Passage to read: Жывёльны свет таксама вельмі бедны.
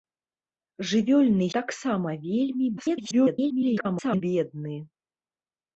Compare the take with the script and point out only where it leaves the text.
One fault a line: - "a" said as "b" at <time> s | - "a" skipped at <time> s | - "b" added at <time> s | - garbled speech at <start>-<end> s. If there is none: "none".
- "свет" skipped at 1.5 s
- garbled speech at 2.8-4.2 s